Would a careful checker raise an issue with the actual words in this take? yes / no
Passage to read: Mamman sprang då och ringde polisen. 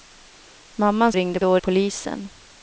yes